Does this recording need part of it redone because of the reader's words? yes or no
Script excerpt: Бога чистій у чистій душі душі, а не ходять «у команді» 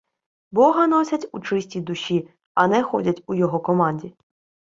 yes